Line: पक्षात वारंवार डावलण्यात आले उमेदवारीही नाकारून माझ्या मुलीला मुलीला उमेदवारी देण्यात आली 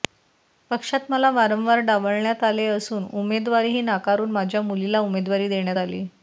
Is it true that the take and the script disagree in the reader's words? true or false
true